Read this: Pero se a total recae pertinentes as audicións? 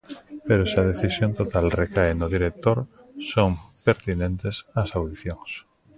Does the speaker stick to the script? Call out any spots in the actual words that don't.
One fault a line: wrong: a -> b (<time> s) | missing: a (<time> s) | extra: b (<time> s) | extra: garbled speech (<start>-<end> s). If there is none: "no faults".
extra: decisión (0.9 s)
extra: no director son (2.1 s)